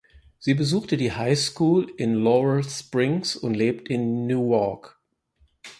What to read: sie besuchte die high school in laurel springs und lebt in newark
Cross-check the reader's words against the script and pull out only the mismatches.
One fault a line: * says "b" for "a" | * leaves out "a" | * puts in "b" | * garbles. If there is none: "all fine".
all fine